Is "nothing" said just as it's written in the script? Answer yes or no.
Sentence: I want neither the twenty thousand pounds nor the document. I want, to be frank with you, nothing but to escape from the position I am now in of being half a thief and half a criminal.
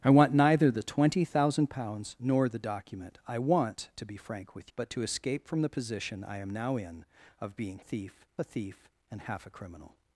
no